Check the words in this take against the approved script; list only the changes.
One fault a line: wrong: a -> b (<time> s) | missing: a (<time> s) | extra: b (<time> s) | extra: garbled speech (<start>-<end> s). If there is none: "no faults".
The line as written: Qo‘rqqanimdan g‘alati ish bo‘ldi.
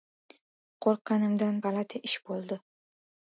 no faults